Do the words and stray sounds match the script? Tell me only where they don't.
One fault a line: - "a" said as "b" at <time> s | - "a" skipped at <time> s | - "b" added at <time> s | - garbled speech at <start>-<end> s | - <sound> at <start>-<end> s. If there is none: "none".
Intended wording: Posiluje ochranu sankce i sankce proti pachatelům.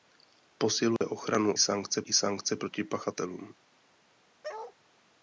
- dropout at 1.0-1.0 s
- bark at 4.4-4.8 s